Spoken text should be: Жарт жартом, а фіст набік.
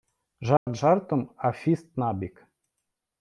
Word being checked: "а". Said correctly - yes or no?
yes